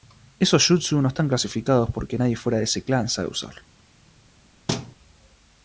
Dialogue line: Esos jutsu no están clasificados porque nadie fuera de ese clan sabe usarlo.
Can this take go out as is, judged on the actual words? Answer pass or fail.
pass